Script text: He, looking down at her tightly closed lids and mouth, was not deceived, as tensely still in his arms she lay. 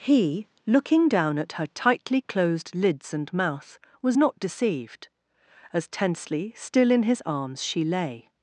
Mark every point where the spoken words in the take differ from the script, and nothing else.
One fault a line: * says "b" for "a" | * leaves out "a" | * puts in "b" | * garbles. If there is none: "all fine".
all fine